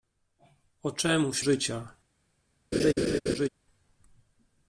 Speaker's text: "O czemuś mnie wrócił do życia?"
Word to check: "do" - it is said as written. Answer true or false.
false